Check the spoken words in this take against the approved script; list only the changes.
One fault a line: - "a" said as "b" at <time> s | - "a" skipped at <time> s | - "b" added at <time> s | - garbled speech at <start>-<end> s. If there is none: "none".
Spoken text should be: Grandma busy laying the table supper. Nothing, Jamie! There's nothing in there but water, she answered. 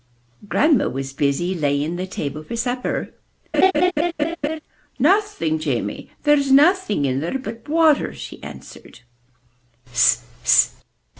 - "was" added at 0.9 s
- "for" added at 2.4 s